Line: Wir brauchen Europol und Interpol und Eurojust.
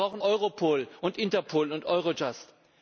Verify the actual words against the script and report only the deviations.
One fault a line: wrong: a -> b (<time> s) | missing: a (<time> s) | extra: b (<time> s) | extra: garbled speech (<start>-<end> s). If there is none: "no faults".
no faults